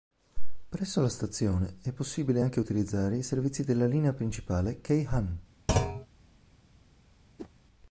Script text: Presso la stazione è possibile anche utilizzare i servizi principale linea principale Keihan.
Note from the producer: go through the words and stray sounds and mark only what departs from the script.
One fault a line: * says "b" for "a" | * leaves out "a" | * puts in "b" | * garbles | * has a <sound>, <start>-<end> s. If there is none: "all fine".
* says "della" for "principale"
* has a thud, 5.7-6.1 s
* has a whoosh, 7.4-7.5 s